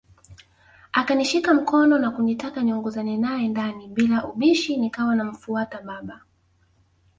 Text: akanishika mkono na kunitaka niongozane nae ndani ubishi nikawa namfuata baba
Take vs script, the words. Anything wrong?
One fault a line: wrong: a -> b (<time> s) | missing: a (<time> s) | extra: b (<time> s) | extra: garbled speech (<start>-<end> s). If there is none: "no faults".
extra: bila (3.9 s)